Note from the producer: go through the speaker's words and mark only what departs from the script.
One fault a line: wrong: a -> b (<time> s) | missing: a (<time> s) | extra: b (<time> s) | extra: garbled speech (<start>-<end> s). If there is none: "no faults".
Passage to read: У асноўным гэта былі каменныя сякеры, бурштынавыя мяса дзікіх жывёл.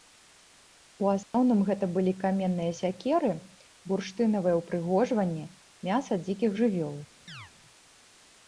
extra: ўпрыгожванні (4.6 s)